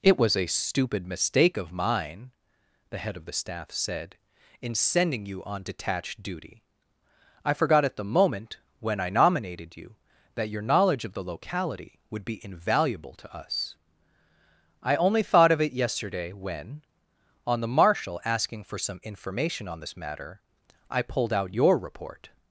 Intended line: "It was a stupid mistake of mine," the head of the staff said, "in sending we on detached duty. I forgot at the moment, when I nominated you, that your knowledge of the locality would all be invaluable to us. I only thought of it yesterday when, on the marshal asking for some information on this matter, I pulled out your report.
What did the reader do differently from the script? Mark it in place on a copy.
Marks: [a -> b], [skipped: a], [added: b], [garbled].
"It was a stupid mistake of mine," the head of the staff said, "in sending [we -> you] on detached duty. I forgot at the moment, when I nominated you, that your knowledge of the locality would [skipped: all] be invaluable to us. I only thought of it yesterday when, on the marshal asking for some information on this matter, I pulled out your report.